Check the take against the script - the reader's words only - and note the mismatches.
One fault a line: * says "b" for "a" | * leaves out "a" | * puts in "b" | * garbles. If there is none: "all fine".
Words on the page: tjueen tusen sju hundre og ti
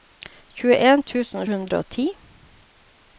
* leaves out "sju"